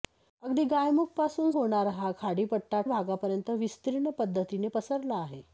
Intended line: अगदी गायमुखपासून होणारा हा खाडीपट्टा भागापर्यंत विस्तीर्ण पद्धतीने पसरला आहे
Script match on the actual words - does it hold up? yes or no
yes